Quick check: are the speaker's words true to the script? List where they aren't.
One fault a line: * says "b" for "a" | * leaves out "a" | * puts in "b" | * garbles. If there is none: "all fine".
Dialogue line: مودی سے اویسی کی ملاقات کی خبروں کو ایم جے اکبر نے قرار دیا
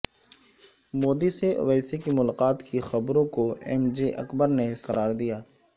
all fine